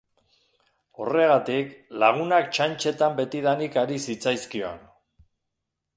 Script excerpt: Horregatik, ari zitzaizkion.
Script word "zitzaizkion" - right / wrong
right